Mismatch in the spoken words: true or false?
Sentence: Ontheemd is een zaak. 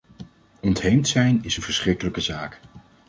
true